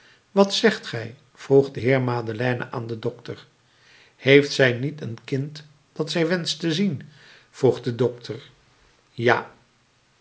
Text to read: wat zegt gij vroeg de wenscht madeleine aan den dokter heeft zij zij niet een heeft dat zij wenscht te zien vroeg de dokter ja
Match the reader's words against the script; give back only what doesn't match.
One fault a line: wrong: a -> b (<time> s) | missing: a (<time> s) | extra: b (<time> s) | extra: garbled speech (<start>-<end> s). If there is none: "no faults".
wrong: wenscht -> heer (1.8 s)
missing: zij (4.7 s)
wrong: heeft -> kind (5.2 s)